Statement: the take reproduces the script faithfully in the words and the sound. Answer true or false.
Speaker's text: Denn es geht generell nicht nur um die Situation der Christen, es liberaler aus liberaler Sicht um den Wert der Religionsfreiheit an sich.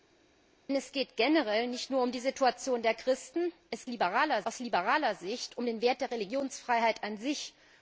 true